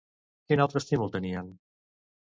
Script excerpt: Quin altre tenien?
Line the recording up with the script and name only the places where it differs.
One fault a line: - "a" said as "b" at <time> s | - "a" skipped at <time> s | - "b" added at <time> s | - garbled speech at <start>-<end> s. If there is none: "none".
- "estímul" added at 0.8 s